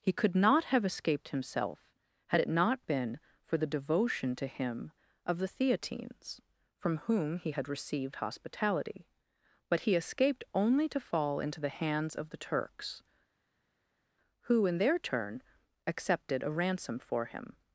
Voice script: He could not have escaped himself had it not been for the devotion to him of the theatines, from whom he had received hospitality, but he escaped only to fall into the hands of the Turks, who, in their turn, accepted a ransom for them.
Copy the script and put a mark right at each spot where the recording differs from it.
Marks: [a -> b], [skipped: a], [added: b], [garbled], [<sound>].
He could not have escaped himself had it not been for the devotion to him of the theatines, from whom he had received hospitality, but he escaped only to fall into the hands of the Turks, who, in their turn, accepted a ransom for [them. -> him]